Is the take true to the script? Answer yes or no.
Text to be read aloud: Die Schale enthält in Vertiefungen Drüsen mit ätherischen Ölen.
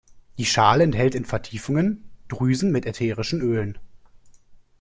yes